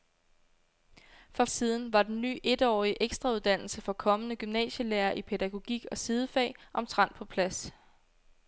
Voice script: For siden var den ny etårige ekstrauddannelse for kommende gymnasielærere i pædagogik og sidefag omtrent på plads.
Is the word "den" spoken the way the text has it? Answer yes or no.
yes